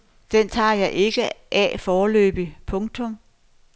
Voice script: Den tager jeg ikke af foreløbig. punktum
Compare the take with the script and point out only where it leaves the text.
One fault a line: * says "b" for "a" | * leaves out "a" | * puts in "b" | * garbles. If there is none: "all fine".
all fine